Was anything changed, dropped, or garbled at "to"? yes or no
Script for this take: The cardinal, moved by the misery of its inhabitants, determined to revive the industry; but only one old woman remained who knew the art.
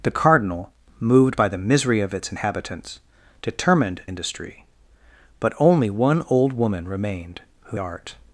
yes